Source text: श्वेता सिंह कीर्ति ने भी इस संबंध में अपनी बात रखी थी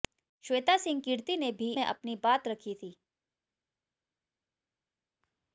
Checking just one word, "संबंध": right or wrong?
wrong